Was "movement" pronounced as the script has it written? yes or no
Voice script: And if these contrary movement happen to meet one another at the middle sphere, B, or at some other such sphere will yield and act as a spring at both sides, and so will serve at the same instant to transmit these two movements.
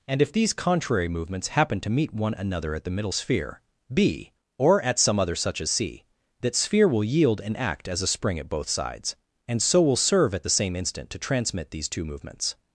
no